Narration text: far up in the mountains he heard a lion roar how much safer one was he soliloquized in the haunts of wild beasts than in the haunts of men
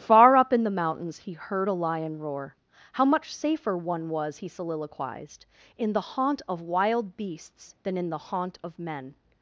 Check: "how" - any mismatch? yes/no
no